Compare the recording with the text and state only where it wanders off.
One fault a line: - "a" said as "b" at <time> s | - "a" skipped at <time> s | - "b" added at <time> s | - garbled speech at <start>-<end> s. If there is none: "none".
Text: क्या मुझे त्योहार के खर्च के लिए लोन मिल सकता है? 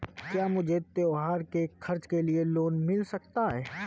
none